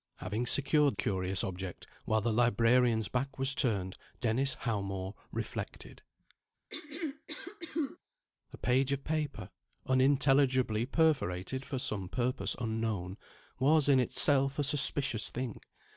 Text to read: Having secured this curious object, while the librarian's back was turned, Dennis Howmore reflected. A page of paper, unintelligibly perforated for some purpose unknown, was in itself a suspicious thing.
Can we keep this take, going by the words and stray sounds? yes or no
no